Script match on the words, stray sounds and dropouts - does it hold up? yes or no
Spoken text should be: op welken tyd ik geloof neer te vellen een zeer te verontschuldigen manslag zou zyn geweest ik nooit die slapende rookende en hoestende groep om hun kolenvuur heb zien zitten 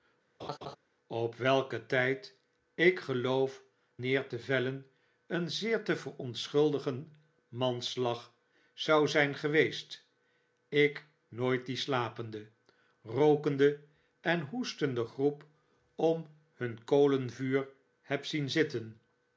no